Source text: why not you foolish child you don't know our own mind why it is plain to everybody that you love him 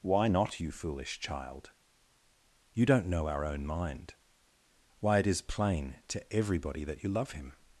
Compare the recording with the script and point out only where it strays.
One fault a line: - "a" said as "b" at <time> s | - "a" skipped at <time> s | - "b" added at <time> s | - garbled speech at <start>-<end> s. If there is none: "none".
none